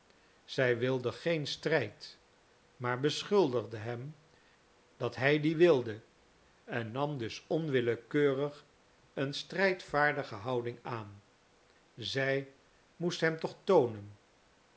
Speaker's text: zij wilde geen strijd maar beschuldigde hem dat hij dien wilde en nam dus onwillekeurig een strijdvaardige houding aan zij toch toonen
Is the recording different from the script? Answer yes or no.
yes